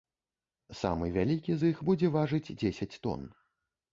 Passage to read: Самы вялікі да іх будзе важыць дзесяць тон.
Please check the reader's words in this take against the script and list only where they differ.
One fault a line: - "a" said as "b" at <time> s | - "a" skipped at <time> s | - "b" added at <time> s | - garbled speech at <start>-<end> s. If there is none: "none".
- "да" said as "з" at 1.6 s